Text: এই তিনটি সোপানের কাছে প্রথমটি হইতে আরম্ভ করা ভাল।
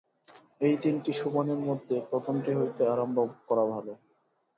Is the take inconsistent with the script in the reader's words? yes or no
yes